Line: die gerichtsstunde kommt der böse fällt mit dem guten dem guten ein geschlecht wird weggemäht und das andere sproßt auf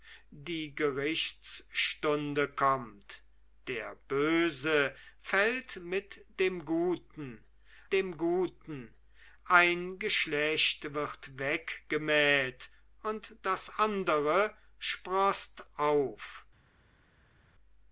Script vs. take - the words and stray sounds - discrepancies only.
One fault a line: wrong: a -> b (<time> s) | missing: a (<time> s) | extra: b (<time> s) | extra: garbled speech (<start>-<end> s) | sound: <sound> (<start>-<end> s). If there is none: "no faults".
no faults